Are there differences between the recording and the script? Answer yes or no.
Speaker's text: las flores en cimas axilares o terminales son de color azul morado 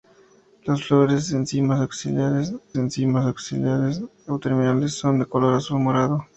yes